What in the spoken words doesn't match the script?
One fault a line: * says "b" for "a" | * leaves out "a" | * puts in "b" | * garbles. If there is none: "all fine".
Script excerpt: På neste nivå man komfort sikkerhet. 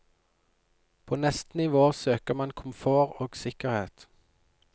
* puts in "søker"
* puts in "og"